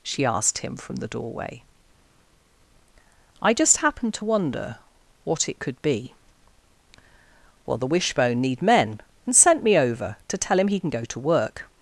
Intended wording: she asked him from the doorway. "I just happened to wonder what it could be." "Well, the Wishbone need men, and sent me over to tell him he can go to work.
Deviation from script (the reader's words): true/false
false